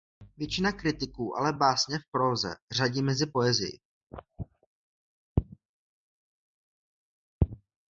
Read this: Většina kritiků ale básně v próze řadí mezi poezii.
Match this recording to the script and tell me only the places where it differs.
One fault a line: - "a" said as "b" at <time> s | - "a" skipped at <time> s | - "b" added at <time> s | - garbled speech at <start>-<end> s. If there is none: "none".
none